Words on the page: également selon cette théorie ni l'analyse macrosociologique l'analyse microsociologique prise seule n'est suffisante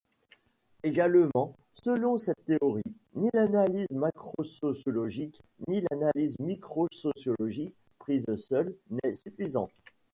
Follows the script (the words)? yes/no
no